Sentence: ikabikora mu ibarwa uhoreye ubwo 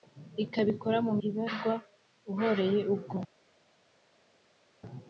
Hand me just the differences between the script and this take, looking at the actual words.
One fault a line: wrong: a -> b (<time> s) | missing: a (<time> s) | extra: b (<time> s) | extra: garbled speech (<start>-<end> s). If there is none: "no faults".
no faults